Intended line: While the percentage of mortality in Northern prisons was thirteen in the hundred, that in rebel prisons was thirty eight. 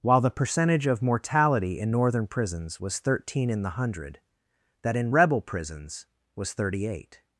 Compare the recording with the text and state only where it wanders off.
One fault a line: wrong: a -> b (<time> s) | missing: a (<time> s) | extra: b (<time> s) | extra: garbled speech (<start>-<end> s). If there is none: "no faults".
no faults